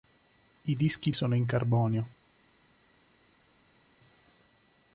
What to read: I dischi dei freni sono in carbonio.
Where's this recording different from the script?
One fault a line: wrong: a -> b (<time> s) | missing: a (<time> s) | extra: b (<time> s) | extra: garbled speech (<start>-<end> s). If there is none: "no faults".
missing: dei freni (1.1 s)